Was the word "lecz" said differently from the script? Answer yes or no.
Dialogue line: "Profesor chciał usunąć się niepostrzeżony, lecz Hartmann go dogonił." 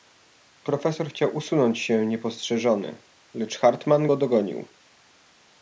no